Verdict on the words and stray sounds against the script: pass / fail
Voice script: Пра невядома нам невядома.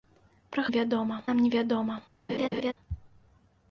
fail